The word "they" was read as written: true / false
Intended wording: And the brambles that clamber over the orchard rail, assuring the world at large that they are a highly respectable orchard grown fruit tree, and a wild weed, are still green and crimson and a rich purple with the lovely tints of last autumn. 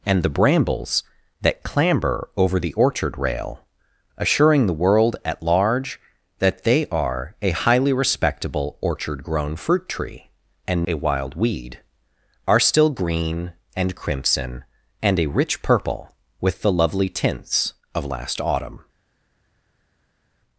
true